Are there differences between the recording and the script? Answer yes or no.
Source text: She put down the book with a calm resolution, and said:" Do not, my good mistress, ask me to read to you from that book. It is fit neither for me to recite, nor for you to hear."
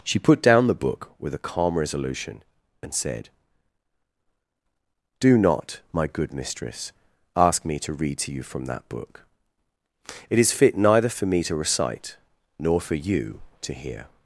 no